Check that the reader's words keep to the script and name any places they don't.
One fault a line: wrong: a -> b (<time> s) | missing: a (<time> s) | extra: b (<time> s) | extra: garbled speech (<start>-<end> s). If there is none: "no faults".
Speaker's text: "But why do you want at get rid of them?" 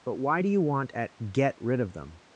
no faults